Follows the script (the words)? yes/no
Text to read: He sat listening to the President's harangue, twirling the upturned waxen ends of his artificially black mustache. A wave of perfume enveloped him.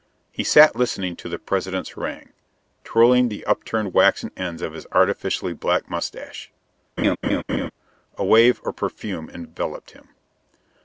yes